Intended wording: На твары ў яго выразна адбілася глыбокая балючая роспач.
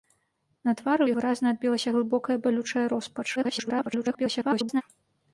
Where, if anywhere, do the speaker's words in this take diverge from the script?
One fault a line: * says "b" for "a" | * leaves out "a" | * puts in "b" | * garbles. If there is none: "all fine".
* leaves out "яго"
* garbles